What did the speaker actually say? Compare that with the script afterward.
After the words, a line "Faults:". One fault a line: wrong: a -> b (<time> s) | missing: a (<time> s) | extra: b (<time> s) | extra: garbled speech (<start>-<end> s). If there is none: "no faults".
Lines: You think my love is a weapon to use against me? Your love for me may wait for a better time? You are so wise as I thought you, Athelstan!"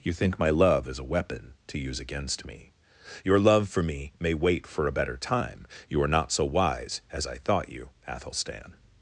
You think my love is a weapon to use against me? Your love for me may wait for a better time? You are not so wise as I thought you, Athelstan!"
Faults:
extra: not (6.1 s)